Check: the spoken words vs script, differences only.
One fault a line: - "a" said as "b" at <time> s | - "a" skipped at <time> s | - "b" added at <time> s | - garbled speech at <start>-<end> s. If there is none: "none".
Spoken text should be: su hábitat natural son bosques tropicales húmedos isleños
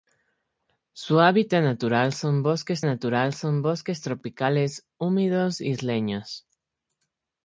- "natural son bosques" added at 2.8 s